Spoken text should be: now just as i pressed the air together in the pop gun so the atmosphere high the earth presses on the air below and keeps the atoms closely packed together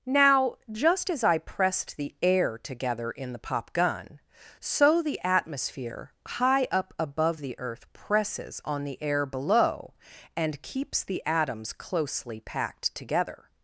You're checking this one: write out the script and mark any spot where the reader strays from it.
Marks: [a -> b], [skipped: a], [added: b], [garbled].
now just as i pressed the air together in the pop gun so the atmosphere high [added: up above] the earth presses on the air below and keeps the atoms closely packed together